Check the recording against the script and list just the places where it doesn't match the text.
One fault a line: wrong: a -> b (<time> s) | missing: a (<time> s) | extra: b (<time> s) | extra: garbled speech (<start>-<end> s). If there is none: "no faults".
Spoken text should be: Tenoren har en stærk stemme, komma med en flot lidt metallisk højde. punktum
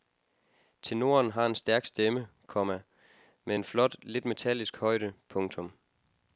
no faults